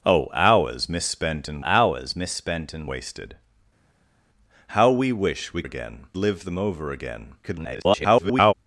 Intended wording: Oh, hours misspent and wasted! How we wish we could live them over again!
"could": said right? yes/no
no